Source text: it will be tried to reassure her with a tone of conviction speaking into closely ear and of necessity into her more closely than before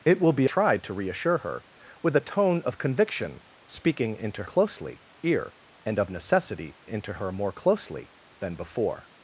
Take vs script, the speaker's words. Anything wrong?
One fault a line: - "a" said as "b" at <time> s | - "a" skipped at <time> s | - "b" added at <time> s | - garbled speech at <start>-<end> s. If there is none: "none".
none